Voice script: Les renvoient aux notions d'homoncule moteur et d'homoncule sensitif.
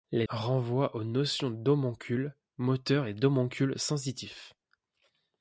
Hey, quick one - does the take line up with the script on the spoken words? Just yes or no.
yes